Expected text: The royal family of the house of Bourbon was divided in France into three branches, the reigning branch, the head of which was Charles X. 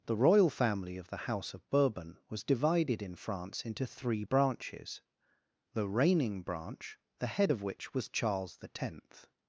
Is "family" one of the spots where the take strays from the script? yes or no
no